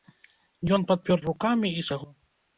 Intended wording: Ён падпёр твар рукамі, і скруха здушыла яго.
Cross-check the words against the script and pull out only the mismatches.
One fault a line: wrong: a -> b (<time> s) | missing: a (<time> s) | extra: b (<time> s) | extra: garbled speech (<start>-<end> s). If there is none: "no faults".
missing: твар (1.2 s)
missing: скруха здушыла (1.9 s)